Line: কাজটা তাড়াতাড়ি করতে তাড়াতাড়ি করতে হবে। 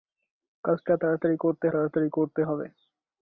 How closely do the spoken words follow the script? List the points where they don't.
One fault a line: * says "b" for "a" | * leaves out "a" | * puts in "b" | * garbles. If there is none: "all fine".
all fine